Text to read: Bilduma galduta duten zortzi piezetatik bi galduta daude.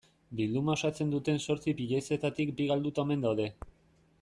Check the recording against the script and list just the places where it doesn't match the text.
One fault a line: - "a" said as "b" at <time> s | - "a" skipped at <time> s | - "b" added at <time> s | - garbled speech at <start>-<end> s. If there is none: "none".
- "galduta" said as "osatzen" at 0.8 s
- "omen" added at 3.1 s